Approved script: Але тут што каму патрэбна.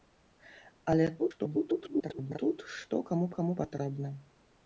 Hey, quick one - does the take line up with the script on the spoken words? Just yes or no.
no